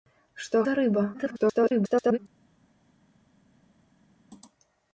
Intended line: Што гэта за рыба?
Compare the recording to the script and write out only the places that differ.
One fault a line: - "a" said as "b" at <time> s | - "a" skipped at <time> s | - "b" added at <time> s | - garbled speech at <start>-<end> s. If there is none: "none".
- "гэта" skipped at 0.6 s
- garbled speech at 1.1-2.2 s